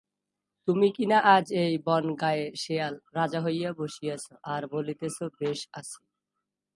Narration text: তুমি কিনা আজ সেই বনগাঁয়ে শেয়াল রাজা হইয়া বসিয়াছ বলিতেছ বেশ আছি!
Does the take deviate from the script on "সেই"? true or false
true